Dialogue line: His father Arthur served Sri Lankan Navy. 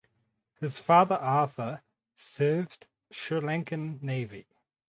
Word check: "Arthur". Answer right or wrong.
right